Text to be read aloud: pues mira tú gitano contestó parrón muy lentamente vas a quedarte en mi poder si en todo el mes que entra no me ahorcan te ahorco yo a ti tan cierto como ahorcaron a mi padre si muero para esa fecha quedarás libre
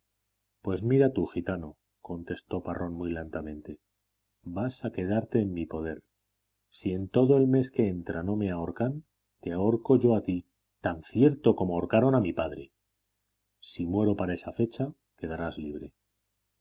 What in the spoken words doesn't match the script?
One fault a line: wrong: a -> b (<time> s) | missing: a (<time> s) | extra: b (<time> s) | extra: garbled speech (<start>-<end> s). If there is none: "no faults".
no faults